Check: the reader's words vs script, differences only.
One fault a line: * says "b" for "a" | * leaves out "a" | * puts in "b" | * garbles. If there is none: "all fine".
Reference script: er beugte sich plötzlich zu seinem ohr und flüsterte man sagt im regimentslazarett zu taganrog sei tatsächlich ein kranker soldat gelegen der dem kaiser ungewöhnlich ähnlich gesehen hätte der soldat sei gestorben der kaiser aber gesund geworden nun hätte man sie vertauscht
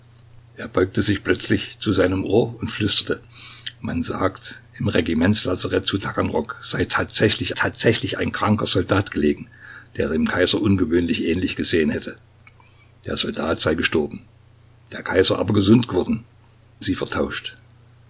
* puts in "tatsächlich"
* leaves out "nun hätte man"